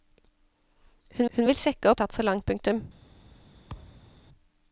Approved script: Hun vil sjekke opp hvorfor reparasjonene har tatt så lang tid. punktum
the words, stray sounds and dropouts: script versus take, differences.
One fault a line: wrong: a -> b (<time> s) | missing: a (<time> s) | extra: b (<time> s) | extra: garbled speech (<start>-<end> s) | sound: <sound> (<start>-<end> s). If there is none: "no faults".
extra: hun (1.4 s)
missing: opp hvorfor reparasjonene (1.9 s)
missing: tid (2.4 s)
sound: thud (3.7-4.2 s)